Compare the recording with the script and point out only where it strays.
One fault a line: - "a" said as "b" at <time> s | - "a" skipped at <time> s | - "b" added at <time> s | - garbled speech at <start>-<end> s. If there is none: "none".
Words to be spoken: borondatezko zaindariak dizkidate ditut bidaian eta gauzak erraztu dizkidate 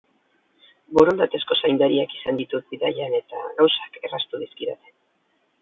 - "dizkidate" said as "izan" at 2.2 s